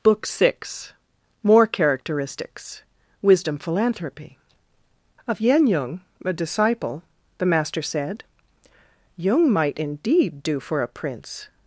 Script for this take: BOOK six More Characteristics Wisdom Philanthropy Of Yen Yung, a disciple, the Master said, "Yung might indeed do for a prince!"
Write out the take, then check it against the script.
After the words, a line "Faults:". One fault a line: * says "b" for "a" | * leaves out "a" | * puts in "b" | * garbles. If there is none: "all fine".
BOOK six More Characteristics Wisdom Philanthropy Of Yen Yung, a disciple, the Master said, "Yung might indeed do for a prince!"
Faults:
all fine